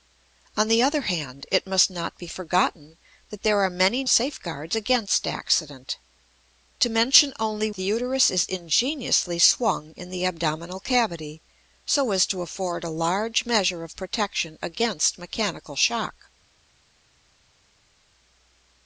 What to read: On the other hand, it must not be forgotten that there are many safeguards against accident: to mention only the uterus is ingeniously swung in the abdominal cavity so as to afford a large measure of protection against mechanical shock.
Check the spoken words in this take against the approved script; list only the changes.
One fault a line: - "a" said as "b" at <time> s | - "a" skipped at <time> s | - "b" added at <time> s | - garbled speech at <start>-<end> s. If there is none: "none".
none